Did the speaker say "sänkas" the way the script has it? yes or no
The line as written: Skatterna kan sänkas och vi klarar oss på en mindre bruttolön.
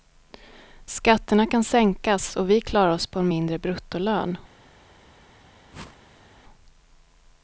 yes